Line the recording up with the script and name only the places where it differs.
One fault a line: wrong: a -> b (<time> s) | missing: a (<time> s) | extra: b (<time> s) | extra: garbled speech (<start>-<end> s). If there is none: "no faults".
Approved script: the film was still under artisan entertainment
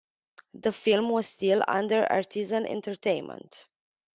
no faults